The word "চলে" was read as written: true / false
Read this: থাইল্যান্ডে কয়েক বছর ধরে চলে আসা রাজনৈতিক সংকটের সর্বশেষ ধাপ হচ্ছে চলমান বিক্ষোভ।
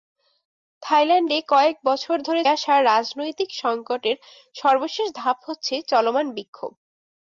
false